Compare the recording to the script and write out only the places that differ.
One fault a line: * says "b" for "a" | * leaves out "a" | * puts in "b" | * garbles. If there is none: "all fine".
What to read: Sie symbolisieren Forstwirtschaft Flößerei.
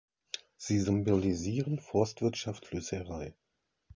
all fine